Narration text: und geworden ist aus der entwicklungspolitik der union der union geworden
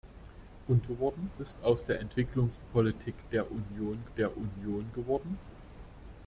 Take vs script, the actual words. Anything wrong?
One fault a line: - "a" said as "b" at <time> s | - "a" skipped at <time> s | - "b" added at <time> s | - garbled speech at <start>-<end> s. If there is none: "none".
none